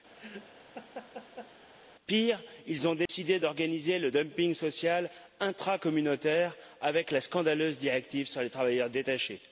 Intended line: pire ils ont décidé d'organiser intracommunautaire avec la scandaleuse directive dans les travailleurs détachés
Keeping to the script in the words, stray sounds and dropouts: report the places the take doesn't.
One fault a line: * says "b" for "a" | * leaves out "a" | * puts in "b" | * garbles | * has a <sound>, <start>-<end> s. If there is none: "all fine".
* has a laugh, 0.1-1.5 s
* has a dropout, 3.1-3.1 s
* puts in "le dumping social"
* says "sur" for "dans"